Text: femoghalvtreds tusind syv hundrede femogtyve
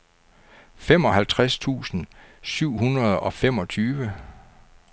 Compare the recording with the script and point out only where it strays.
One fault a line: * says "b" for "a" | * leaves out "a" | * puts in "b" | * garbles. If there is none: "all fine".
* puts in "og"